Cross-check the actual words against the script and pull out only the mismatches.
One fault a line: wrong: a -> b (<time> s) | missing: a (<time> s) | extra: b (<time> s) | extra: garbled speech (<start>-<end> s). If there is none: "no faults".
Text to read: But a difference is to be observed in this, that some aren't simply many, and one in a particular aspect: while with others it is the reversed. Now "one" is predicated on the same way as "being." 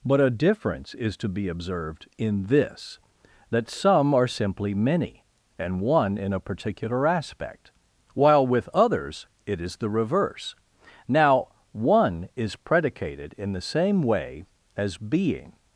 wrong: aren't -> are (4.1 s)
wrong: reversed -> reverse (9.9 s)
wrong: on -> in (13.4 s)